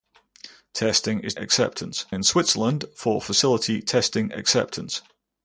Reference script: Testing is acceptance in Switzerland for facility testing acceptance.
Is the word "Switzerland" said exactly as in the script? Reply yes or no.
yes